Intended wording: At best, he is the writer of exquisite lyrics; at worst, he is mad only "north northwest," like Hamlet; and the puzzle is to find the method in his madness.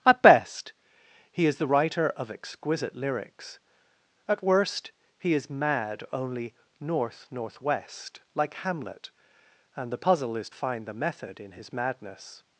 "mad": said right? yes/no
yes